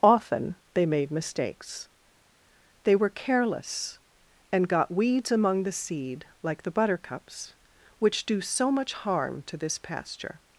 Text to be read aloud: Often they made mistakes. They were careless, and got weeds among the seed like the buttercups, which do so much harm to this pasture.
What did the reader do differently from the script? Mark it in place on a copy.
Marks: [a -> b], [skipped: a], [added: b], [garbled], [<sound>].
Often they made mistakes. They were careless, and got weeds among the seed like the buttercups, which do so much harm to this pasture.